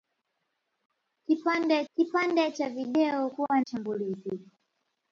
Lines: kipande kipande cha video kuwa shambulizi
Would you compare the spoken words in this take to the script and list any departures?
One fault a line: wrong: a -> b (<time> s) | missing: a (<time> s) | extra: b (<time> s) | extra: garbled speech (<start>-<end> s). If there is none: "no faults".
no faults